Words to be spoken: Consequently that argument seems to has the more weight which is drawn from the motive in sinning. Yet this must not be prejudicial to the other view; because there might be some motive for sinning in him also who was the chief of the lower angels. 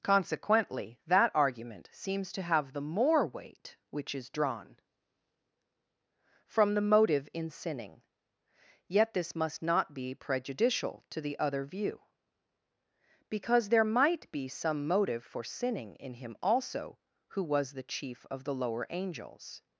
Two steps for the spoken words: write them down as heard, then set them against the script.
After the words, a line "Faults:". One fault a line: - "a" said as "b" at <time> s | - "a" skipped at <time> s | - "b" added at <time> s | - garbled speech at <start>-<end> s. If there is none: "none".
Consequently that argument seems to have the more weight which is drawn from the motive in sinning. Yet this must not be prejudicial to the other view; because there might be some motive for sinning in him also who was the chief of the lower angels.
Faults:
- "has" said as "have" at 2.4 s